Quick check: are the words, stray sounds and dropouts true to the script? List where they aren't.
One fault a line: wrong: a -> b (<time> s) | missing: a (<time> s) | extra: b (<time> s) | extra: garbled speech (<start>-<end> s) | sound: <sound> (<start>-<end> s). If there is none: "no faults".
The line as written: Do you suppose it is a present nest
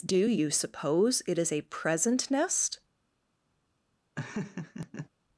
sound: laugh (4.2-5.1 s)